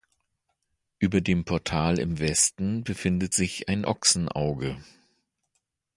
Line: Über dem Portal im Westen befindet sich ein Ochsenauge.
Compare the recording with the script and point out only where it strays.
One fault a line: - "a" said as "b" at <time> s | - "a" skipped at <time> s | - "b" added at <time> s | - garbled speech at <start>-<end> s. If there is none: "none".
none